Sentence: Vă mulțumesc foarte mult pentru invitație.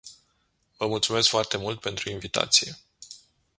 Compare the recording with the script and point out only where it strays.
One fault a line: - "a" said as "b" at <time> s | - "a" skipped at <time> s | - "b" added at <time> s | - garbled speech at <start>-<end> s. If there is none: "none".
none